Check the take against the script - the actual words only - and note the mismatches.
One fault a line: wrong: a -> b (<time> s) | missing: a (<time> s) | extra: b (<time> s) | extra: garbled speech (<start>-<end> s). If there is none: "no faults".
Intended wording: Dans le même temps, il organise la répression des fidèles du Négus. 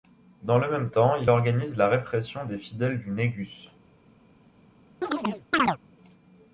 no faults